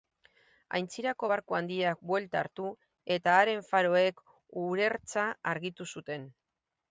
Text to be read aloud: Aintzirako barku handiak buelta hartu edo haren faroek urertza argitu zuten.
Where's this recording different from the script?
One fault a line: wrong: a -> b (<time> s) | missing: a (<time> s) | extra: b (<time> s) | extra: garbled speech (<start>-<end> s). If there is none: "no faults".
wrong: edo -> eta (3.2 s)